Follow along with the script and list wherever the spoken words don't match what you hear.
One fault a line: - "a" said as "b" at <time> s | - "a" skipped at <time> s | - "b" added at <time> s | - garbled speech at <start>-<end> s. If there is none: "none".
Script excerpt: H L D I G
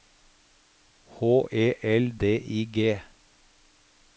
- "E" added at 1.5 s